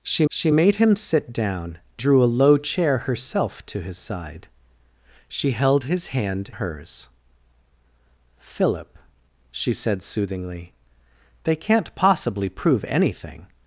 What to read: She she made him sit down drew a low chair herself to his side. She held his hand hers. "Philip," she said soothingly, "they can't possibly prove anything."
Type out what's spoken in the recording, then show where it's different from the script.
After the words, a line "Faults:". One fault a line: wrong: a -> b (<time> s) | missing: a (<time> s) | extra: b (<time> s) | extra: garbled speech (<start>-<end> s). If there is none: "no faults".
She she made him sit down drew a low chair herself to his side. She held his hand hers. "Philip," she said soothingly, "they can't possibly prove anything."
Faults:
no faults